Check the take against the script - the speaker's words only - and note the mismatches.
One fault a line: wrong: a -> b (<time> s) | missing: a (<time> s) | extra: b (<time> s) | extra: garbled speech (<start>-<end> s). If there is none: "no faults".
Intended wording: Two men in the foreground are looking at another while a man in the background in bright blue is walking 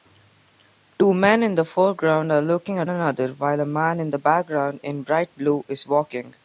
no faults